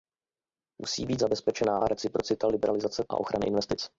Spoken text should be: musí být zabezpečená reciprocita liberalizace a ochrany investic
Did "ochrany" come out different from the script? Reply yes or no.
no